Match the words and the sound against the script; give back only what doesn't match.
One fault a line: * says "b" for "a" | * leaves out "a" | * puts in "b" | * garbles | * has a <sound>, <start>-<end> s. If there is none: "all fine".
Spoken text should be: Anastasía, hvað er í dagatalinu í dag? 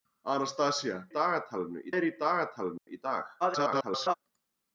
* says "dagatalinu" for "hvað"
* has a dropout, 2.8-2.9 s
* garbles